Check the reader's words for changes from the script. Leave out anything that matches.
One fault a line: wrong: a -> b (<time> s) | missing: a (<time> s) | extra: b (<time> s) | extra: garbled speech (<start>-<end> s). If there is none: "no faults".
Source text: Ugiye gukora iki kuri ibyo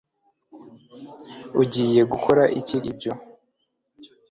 missing: kuri (2.8 s)